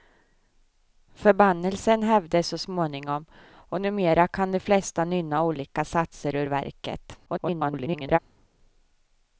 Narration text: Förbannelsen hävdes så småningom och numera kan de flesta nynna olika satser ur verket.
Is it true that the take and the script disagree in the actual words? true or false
true